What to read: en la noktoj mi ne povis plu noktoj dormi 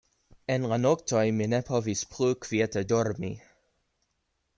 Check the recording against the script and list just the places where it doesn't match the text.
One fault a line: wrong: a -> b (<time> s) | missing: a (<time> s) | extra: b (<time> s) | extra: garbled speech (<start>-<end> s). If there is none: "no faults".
wrong: noktoj -> kviete (2.5 s)